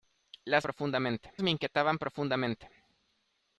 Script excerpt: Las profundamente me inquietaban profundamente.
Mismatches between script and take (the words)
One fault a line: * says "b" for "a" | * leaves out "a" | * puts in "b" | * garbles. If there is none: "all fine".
all fine